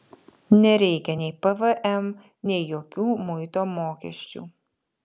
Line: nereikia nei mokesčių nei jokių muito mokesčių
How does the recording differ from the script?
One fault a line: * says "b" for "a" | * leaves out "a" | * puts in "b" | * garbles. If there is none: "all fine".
* says "pvm" for "mokesčių"